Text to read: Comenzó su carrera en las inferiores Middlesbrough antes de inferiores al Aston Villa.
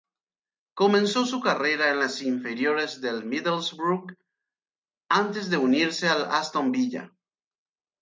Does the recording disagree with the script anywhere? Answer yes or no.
yes